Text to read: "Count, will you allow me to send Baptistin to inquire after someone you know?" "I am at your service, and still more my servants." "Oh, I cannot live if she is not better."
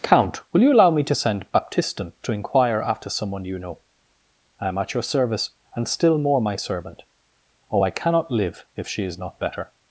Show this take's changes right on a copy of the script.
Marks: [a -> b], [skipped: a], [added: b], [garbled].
"Count, will you allow me to send Baptistin to inquire after someone you know?" "I am at your service, and still more my [servants." -> servant] "Oh, I cannot live if she is not better."